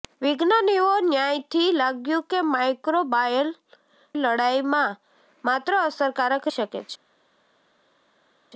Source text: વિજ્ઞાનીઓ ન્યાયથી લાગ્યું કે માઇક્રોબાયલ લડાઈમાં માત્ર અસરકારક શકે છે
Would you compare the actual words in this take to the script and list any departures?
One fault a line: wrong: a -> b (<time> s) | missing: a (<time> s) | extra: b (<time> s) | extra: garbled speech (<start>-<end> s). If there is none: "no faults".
no faults